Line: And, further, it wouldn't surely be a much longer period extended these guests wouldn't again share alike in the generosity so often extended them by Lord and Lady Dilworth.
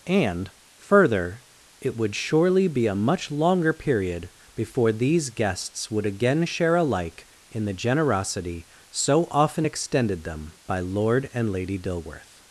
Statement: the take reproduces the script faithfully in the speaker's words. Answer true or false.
false